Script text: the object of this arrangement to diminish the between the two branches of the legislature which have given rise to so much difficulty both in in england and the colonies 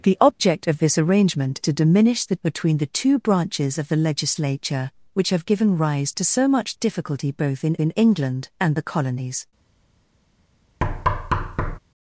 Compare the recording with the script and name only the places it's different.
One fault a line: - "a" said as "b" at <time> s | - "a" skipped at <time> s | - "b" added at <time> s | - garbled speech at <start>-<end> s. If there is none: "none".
none